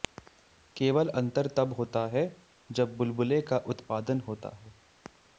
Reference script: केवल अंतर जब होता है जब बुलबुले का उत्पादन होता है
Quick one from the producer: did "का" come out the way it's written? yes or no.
yes